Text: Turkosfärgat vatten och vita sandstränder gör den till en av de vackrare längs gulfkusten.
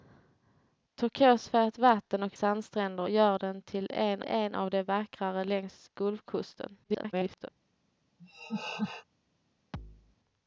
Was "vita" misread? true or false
true